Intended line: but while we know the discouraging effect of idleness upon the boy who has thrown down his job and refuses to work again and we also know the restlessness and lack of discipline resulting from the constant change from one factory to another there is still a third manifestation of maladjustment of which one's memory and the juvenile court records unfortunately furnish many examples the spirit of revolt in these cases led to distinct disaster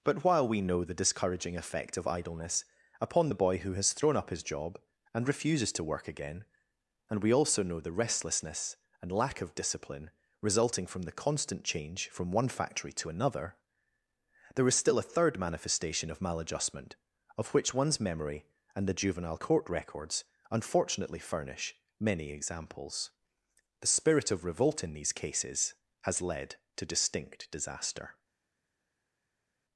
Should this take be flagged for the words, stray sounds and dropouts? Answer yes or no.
yes